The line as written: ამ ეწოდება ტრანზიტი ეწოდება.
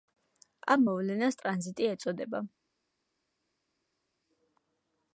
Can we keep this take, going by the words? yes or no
no